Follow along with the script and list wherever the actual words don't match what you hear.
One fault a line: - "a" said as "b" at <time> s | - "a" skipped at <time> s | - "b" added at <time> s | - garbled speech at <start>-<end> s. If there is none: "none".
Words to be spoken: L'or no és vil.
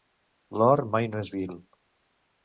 - "mai" added at 0.9 s